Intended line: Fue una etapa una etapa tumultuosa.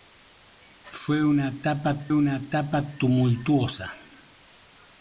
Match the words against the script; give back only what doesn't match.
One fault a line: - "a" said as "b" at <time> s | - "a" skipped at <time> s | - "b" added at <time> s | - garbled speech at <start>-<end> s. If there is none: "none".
none